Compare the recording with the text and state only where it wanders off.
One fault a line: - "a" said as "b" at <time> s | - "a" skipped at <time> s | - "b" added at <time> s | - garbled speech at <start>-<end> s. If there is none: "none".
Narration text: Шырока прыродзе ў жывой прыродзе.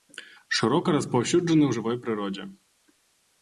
- "прыродзе" said as "распаўсюджаны" at 0.9 s